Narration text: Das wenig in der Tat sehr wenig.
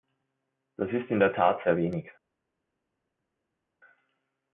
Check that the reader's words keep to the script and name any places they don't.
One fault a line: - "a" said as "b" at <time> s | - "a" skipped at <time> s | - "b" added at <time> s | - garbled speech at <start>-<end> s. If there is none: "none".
- "wenig" said as "ist" at 0.9 s